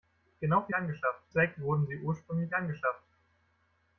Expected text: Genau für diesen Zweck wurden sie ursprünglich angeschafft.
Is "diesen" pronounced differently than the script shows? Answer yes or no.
yes